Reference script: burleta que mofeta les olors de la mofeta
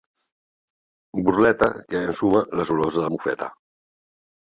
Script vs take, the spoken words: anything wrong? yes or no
yes